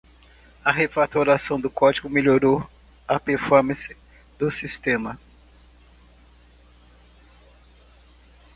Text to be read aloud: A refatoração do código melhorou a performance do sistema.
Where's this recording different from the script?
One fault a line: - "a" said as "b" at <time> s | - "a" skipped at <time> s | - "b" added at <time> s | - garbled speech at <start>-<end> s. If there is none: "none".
none